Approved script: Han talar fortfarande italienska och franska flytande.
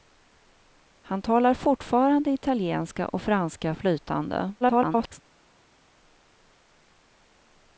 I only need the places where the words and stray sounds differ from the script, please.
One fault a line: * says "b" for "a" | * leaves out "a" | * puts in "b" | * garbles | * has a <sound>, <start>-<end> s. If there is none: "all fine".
* garbles